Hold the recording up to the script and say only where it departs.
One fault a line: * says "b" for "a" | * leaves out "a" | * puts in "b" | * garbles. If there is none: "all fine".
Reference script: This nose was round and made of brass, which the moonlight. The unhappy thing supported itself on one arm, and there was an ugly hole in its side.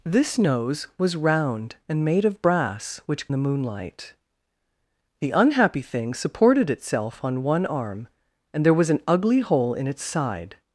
all fine